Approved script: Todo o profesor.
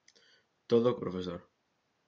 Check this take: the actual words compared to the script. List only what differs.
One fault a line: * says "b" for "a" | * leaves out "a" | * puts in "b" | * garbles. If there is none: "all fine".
all fine